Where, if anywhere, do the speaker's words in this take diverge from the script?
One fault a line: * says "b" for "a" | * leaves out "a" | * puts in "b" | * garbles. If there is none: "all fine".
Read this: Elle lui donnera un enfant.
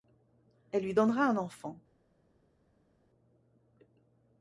all fine